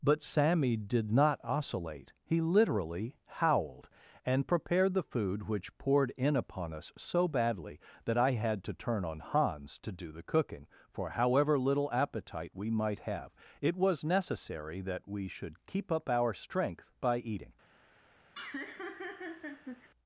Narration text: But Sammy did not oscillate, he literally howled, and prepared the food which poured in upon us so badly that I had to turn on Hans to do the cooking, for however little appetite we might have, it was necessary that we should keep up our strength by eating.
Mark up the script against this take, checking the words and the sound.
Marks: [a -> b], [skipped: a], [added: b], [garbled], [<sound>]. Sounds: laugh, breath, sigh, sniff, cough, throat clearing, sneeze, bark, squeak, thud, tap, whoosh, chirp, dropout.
But Sammy did not oscillate, he literally howled, and prepared the food which poured in upon us so badly that I had to turn on Hans to do the cooking, for however little appetite we might have, it was necessary that we should keep up our strength by eating. [laugh]